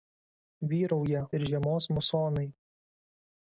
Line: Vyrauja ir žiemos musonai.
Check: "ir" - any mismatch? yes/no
no